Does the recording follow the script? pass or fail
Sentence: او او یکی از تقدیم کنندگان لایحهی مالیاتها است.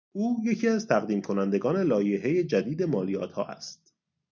fail